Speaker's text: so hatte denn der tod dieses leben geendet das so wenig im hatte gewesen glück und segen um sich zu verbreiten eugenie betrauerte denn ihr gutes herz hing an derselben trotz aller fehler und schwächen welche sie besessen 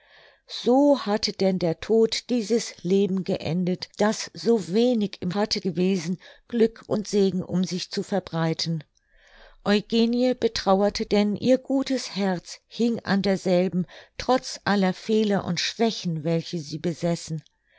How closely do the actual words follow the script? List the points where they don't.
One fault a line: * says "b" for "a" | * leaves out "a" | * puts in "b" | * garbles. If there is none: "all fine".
all fine